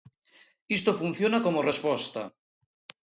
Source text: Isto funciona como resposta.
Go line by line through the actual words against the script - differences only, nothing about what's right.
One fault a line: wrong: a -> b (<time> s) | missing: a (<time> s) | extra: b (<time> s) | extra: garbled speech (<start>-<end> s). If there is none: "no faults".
no faults